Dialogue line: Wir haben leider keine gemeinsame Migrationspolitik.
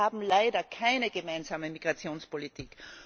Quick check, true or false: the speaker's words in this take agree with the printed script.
true